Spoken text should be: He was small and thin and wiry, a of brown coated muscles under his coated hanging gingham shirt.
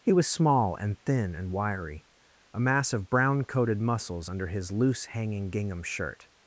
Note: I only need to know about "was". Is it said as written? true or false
true